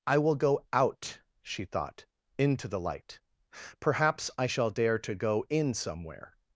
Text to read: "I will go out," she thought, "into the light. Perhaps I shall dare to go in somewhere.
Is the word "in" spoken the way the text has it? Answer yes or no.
yes